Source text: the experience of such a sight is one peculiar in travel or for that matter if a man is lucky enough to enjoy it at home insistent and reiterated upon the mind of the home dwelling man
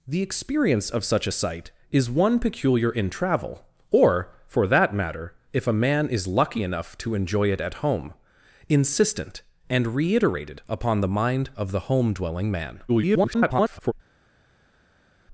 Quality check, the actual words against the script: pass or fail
fail